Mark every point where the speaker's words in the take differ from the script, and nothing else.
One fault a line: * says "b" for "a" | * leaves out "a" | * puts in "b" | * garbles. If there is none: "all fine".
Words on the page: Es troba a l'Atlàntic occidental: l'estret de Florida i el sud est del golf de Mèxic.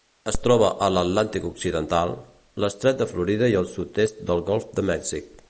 all fine